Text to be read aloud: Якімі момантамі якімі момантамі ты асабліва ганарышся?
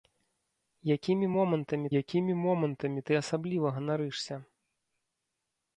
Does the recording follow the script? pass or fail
pass